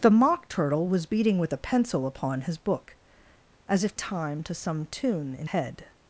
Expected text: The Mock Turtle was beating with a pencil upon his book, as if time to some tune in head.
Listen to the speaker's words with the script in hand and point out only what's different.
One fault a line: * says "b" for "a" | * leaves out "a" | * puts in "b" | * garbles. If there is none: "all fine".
all fine